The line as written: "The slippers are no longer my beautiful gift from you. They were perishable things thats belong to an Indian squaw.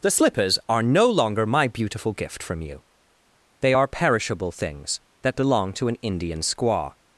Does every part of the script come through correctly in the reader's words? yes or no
no